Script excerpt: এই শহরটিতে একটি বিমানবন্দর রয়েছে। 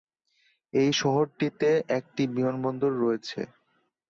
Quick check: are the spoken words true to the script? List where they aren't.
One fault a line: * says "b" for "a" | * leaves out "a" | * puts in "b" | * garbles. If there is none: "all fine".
all fine